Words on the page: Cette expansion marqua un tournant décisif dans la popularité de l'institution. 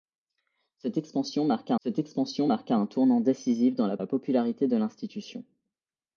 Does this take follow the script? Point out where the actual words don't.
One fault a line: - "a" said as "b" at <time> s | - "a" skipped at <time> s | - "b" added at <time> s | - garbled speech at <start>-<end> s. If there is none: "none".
- "cette expansion marqua" added at 1.8 s
- "la" added at 4.0 s